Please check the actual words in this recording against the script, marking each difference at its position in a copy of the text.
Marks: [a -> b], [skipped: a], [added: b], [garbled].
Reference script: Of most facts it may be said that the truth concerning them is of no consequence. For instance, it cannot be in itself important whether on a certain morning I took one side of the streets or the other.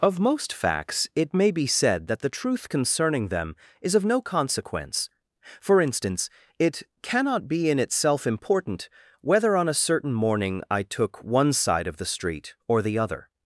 Of most facts it may be said that the truth concerning them is of no consequence. For instance, it cannot be in itself important whether on a certain morning I took one side of the [streets -> street] or the other.